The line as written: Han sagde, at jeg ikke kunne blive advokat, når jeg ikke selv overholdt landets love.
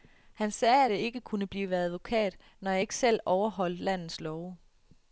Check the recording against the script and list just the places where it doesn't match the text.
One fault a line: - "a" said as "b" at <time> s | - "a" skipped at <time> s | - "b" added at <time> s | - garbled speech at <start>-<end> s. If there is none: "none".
none